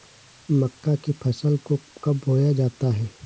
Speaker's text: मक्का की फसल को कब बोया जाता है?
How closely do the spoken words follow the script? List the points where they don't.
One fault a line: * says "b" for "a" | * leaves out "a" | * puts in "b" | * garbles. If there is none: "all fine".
all fine